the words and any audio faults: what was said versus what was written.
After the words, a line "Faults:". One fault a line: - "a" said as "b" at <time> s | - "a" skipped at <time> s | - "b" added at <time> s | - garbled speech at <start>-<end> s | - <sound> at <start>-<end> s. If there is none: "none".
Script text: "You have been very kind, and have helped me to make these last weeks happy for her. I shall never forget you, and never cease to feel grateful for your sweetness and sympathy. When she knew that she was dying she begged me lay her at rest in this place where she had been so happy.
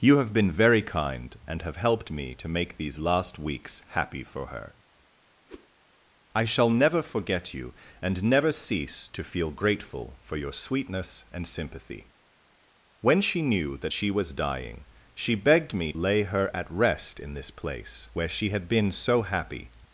"You have been very kind, and have helped me to make these last weeks happy for her. I shall never forget you, and never cease to feel grateful for your sweetness and sympathy. When she knew that she was dying she begged me lay her at rest in this place where she had been so happy.
Faults:
- whoosh at 5.5-5.7 s